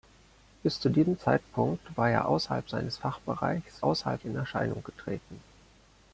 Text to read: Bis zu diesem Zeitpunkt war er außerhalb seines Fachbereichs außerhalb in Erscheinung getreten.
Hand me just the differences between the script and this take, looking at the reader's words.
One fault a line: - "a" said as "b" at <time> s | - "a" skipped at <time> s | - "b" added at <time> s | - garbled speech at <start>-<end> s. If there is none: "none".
none